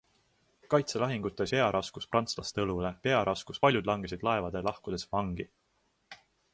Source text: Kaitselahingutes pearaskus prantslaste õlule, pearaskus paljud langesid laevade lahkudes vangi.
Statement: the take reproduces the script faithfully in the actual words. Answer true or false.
true